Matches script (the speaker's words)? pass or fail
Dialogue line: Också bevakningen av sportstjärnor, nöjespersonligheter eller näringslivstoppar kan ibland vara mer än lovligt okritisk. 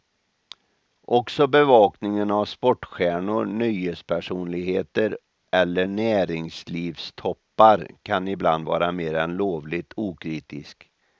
pass